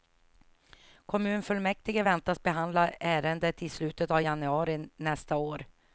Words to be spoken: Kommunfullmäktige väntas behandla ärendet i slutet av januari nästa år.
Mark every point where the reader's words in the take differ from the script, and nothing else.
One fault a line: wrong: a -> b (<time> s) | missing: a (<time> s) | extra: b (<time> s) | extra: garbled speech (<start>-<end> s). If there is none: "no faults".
no faults